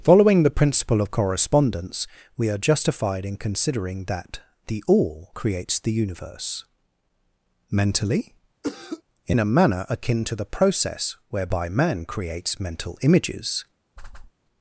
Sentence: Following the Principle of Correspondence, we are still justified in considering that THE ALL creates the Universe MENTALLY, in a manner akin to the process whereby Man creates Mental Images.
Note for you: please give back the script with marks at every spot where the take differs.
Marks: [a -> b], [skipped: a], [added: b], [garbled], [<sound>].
Following the Principle of Correspondence, we are [skipped: still] justified in considering that THE ALL creates the Universe MENTALLY, [cough] in a manner akin to the process whereby Man creates Mental Images. [whoosh]